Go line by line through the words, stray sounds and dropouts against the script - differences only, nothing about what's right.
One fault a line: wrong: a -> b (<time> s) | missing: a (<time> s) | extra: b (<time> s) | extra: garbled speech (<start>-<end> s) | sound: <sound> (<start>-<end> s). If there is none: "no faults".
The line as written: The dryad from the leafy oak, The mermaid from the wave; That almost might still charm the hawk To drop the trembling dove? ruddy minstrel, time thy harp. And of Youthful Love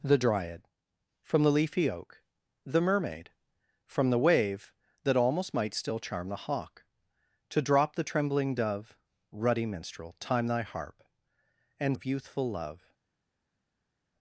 no faults